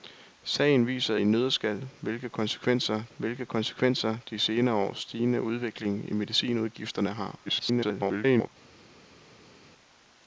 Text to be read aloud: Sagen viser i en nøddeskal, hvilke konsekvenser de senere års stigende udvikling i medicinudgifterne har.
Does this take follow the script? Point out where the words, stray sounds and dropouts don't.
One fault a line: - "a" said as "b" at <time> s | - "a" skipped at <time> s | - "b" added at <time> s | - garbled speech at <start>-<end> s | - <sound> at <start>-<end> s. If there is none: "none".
- "i" skipped at 1.1 s
- "hvilke konsekvenser" added at 3.2 s
- garbled speech at 7.5-8.5 s